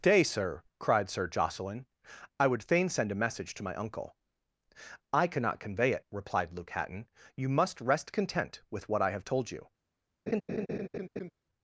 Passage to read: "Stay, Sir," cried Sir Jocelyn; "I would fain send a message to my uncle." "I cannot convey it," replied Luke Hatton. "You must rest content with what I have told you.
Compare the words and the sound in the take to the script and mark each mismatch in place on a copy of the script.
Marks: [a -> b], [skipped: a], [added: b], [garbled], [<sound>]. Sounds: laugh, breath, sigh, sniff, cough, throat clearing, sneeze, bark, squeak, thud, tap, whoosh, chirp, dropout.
["Stay, -> Day] Sir," cried Sir Jocelyn; "I would fain send a message to my uncle." "I cannot convey it," replied Luke Hatton. "You must rest content with what I have told you. [laugh]